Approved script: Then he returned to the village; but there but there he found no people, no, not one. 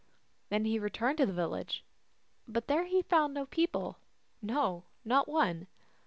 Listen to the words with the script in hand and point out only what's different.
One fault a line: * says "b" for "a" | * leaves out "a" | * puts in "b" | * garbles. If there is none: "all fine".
* leaves out "but there"